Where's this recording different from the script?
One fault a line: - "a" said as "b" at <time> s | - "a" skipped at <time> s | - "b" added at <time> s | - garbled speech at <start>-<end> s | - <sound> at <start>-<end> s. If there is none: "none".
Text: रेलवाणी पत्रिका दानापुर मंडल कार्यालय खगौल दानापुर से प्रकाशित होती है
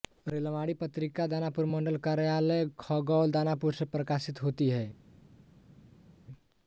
none